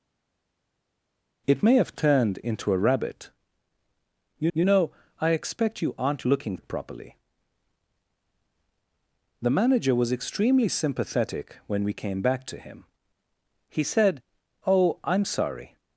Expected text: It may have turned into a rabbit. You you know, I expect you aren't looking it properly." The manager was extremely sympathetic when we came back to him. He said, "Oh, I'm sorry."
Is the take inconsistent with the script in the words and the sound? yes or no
no